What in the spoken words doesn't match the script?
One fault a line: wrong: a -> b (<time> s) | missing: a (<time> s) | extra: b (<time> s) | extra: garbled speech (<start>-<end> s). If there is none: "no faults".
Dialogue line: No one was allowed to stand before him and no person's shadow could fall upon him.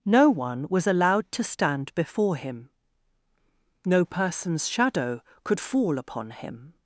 missing: and (2.7 s)